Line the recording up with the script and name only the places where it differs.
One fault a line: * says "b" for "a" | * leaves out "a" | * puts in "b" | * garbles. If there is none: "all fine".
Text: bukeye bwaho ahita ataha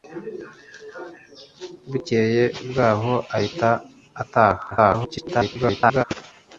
* garbles